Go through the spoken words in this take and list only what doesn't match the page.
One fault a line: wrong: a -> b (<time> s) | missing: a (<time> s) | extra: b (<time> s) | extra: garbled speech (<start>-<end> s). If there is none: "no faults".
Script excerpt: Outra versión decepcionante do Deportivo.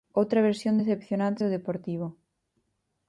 no faults